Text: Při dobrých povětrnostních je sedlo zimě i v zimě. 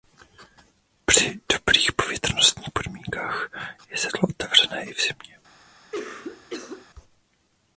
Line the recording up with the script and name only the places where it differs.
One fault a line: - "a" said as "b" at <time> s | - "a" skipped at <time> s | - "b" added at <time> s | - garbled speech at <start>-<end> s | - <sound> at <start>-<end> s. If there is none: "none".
- "podmínkách" added at 2.7 s
- "zimě" said as "otevřené" at 4.3 s
- cough at 5.9-6.9 s